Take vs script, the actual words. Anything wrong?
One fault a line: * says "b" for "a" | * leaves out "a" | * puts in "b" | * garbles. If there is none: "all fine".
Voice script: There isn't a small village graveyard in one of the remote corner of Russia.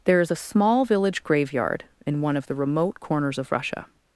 * says "is" for "isn't"
* says "corners" for "corner"